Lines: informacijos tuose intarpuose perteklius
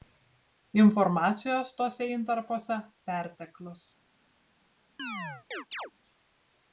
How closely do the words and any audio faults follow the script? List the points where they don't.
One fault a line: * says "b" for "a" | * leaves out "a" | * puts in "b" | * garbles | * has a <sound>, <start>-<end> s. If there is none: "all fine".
* has a chirp, 5.0-5.9 s